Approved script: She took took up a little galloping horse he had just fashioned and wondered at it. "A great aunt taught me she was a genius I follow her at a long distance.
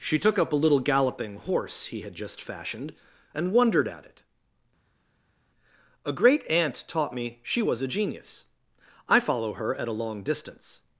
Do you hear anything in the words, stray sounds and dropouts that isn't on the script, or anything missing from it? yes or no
yes